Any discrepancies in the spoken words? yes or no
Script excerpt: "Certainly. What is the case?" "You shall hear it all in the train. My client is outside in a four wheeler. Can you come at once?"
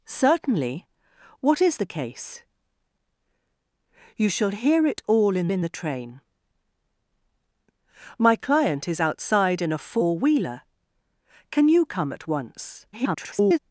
yes